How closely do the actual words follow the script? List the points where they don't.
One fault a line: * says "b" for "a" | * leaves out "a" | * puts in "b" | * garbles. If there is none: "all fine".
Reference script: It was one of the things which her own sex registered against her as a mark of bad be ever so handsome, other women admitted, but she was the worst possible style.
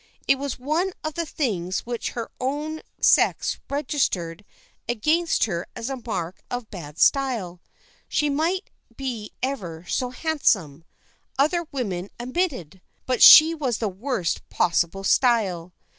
* puts in "style She might"